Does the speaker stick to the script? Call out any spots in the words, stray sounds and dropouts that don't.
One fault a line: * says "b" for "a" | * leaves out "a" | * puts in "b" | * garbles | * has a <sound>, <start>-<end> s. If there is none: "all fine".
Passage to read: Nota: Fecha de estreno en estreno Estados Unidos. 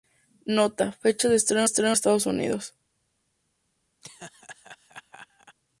* has a laugh, 4.0-5.6 s